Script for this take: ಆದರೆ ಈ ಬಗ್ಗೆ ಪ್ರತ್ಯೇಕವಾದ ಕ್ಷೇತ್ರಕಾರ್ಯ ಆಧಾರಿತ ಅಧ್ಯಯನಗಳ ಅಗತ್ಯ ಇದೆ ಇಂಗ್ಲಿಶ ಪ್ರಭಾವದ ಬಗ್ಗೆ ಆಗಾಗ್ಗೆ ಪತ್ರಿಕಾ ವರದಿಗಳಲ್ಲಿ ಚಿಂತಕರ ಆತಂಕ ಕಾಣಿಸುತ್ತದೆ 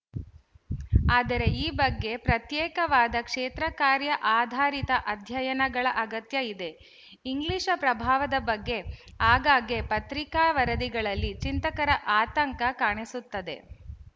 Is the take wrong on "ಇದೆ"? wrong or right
right